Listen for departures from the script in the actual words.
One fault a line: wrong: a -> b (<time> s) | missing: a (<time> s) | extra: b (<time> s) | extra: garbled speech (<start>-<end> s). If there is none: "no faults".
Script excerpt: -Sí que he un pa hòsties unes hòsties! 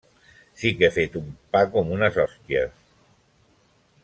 extra: fet (0.9 s)
wrong: hòsties -> com (1.8 s)